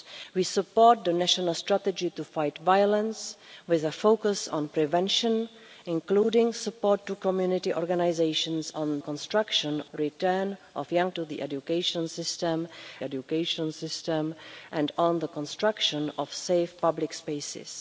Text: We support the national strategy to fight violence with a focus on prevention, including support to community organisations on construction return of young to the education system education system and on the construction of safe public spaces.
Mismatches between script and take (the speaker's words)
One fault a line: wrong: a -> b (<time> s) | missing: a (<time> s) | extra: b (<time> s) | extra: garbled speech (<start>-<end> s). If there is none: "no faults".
no faults